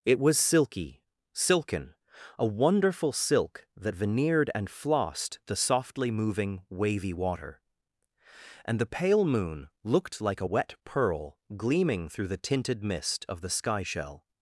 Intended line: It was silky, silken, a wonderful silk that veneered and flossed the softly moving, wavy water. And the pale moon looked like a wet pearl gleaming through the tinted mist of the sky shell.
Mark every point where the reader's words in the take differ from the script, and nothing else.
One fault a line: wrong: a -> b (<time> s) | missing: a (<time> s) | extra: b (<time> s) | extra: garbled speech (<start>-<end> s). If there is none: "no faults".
no faults